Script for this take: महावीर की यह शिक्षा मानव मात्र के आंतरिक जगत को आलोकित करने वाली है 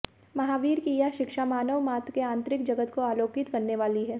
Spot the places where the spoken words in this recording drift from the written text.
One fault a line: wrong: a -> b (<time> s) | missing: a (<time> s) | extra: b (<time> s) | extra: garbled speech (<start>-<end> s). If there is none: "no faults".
no faults